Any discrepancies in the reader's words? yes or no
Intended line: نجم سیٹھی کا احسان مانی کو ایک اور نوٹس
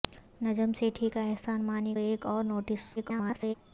yes